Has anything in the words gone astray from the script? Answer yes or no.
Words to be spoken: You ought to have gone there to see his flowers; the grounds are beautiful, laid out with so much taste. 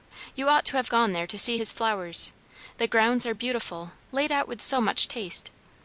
no